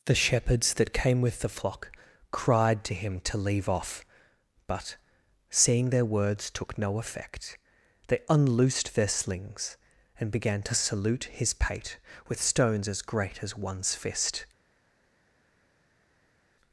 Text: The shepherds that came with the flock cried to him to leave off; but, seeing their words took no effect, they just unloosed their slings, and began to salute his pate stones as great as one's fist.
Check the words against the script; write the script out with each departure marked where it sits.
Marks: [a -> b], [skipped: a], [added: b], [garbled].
The shepherds that came with the flock cried to him to leave off; but, seeing their words took no effect, they [skipped: just] unloosed their slings, and began to salute his pate [added: with] stones as great as one's fist.